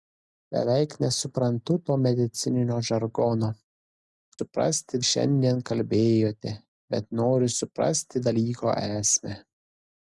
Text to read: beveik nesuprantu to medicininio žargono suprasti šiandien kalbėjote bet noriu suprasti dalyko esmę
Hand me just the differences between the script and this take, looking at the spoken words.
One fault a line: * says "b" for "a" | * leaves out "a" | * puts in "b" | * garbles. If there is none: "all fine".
all fine